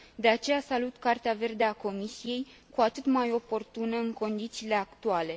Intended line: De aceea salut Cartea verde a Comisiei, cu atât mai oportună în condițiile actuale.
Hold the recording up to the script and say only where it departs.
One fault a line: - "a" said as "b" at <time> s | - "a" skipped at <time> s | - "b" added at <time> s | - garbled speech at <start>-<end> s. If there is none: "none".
none